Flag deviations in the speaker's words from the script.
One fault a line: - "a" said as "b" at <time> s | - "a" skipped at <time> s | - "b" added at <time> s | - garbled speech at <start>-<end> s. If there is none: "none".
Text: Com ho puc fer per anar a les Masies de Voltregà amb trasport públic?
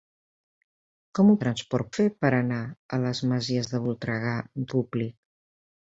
- "puc" said as "trasport" at 1.4 s
- "trasport" skipped at 4.7 s